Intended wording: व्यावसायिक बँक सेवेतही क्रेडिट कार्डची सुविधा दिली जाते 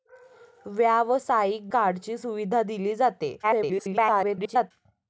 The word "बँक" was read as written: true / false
false